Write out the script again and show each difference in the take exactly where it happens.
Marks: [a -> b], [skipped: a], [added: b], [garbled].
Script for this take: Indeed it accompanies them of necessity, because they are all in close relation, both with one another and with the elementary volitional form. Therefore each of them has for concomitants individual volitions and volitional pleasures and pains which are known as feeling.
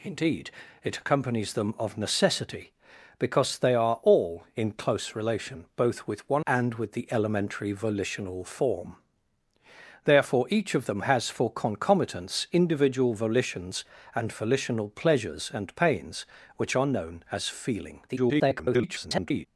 Indeed it accompanies them of necessity, because they are all in close relation, both with one [skipped: another] and with the elementary volitional form. Therefore each of them has for concomitants individual volitions and volitional pleasures and pains which are known as feeling. [garbled]